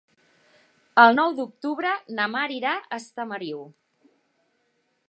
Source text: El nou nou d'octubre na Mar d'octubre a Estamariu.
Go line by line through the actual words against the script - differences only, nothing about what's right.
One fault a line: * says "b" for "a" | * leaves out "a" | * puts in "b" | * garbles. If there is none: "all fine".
* leaves out "nou"
* says "irà" for "d'octubre"